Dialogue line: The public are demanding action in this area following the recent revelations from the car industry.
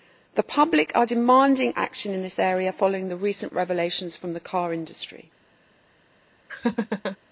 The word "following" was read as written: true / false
true